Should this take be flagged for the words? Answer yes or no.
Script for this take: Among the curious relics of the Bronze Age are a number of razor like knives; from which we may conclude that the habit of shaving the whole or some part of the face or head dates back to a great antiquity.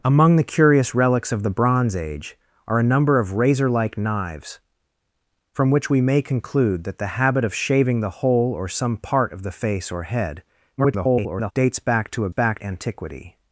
yes